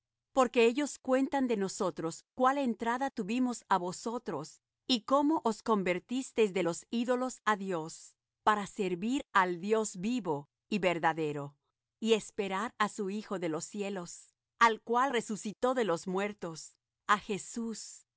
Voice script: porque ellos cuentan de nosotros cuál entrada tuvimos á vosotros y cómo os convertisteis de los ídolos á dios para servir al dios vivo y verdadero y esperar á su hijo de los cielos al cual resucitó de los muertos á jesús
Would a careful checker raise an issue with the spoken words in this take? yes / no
no